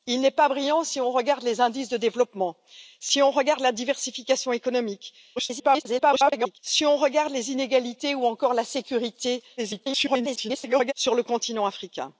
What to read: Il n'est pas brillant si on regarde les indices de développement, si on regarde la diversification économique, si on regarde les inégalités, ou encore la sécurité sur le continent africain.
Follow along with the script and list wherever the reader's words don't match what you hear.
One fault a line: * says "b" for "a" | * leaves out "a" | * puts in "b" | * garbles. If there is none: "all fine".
* garbles
* garbles